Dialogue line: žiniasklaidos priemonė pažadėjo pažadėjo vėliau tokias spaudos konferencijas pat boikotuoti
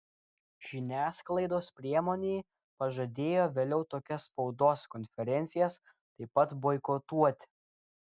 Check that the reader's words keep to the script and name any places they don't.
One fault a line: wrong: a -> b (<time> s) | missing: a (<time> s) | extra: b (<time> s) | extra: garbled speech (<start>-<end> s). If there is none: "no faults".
missing: pažadėjo (3.5 s)
extra: taip (5.9 s)